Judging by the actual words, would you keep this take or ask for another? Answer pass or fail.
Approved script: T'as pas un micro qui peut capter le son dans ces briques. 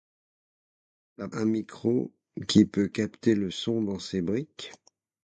fail